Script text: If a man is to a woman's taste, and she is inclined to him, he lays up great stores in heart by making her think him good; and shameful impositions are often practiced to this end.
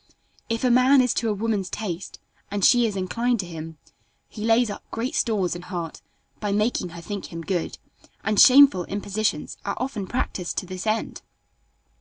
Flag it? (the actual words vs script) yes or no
no